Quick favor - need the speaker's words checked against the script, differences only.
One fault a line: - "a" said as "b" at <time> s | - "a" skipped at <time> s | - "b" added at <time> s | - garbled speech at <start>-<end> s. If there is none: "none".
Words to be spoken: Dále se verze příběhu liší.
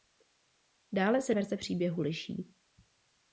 none